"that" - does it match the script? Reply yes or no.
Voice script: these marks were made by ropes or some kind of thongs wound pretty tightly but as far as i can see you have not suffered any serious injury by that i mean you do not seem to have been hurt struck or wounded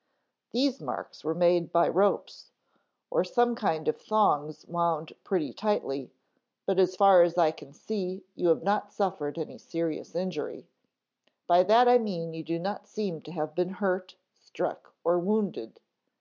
yes